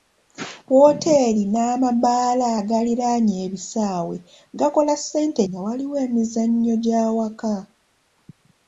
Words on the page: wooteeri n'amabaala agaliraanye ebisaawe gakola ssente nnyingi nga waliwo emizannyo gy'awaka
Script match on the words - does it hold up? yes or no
no